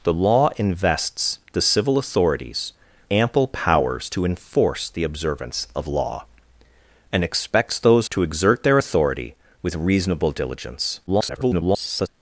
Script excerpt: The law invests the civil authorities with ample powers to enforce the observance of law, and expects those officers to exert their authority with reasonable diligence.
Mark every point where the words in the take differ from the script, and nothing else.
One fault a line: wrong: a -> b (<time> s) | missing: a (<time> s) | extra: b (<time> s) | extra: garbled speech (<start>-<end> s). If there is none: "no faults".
missing: with (2.7 s)
missing: officers (8.1 s)
extra: garbled speech (11.1-12.1 s)